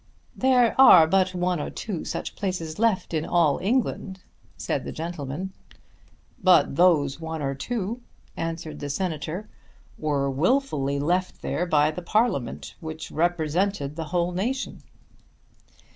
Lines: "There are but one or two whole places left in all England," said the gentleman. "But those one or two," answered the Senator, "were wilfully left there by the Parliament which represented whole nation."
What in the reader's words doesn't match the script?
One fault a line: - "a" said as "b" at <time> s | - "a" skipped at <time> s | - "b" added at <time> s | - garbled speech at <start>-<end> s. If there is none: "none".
- "whole" said as "such" at 2.0 s
- "the" added at 13.9 s